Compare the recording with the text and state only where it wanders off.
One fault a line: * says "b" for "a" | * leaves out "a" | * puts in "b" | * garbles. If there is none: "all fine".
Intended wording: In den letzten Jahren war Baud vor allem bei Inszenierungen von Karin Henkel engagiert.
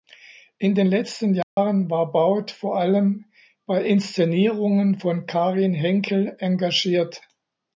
all fine